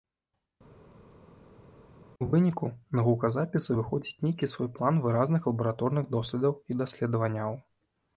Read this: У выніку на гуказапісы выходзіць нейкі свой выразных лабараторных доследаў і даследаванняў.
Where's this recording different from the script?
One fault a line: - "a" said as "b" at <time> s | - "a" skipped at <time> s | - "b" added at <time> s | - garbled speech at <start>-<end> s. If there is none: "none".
- "план" added at 4.8 s